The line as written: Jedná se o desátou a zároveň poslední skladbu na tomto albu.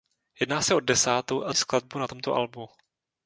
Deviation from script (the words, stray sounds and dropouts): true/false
true